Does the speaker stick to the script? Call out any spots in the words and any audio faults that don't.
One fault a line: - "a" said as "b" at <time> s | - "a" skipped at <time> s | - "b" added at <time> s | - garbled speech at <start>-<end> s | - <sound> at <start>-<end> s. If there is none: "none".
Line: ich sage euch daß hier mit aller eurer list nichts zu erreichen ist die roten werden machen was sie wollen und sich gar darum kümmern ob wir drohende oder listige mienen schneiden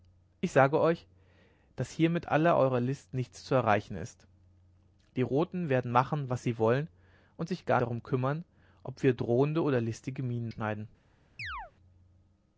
- chirp at 11.4-11.7 s